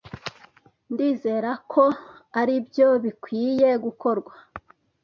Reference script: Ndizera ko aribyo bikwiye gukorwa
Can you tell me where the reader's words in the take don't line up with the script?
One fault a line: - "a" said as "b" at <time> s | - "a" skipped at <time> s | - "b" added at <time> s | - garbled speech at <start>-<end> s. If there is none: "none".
none